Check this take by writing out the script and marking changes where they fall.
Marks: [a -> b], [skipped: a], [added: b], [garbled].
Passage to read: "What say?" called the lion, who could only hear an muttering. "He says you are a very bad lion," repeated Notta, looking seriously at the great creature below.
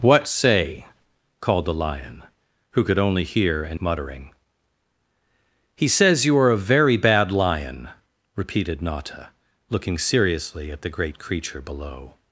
"What say?" called the lion, who could only hear an muttering. "He says you are a very bad lion," repeated Notta, looking seriously at the great creature below.